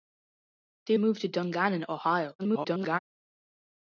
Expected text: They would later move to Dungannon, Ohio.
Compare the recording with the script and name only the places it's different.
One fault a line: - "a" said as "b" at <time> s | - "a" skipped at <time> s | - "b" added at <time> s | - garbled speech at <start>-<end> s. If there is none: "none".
- "would later" skipped at 1.0 s
- garbled speech at 2.4-3.0 s